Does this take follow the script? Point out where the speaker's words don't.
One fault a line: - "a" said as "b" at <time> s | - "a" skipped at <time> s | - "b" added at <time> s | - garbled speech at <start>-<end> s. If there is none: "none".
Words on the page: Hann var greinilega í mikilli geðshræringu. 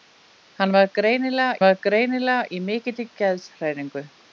- "var greinilega" added at 1.6 s